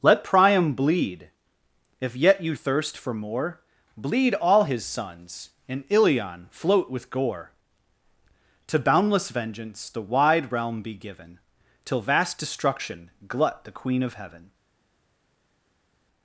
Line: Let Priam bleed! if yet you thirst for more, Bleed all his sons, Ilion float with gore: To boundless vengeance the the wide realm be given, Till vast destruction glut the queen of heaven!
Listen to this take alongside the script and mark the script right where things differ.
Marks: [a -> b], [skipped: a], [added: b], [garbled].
Let Priam bleed! if yet you thirst for more, Bleed all his sons, [added: and] Ilion float with gore: To boundless vengeance the [skipped: the] wide realm be given, Till vast destruction glut the queen of heaven!